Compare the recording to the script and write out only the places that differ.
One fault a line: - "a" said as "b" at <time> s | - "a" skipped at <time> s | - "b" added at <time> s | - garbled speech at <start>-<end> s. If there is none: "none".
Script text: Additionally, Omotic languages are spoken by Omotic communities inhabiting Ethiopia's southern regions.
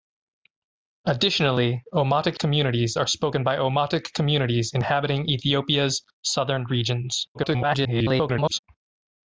- "languages" said as "communities" at 2.4 s
- garbled speech at 7.3-8.6 s